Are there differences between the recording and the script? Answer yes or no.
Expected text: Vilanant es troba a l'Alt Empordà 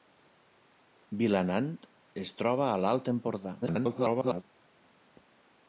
yes